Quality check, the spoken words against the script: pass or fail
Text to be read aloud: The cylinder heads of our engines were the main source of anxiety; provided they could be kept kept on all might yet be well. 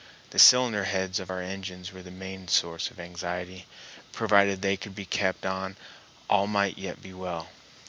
fail